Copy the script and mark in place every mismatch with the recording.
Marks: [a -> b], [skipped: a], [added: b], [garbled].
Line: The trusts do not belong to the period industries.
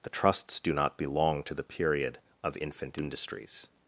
The trusts do not belong to the period [added: of infant] industries.